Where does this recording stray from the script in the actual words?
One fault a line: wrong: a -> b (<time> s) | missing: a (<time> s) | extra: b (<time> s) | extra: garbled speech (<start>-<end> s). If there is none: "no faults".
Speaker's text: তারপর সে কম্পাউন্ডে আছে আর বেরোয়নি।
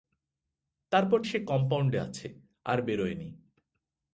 no faults